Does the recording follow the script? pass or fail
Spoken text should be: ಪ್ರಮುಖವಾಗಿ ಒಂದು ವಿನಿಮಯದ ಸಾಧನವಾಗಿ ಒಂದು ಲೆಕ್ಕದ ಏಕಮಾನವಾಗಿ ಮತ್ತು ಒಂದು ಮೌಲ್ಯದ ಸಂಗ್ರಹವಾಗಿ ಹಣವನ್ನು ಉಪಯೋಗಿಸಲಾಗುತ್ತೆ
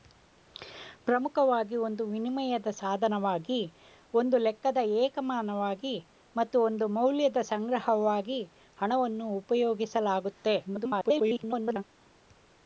fail